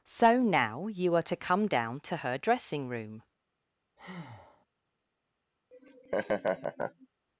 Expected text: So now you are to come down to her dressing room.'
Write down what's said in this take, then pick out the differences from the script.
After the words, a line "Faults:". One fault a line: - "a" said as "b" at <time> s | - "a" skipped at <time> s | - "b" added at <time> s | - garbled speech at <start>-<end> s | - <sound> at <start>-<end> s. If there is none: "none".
So now you are to come down to her dressing room.'
Faults:
- breath at 4.0-4.7 s
- laugh at 5.7-7.1 s